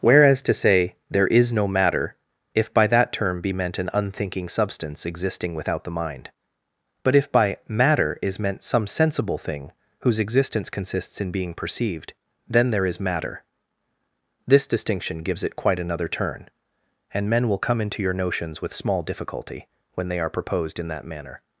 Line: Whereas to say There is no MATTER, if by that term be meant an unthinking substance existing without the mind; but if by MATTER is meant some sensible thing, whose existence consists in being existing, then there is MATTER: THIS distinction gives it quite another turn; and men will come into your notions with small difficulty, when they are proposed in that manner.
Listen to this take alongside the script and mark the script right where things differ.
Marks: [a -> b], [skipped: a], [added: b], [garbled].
Whereas to say There is no MATTER, if by that term be meant an unthinking substance existing without the mind; but if by MATTER is meant some sensible thing, whose existence consists in being [existing, -> perceived] then there is MATTER: THIS distinction gives it quite another turn; and men will come into your notions with small difficulty, when they are proposed in that manner.